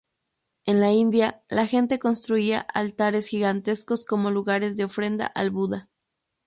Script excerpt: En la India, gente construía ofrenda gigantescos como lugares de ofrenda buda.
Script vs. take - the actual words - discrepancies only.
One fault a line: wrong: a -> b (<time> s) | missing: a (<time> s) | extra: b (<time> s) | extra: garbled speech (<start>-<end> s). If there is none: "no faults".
extra: la (1.5 s)
wrong: ofrenda -> altares (2.6 s)
extra: al (5.3 s)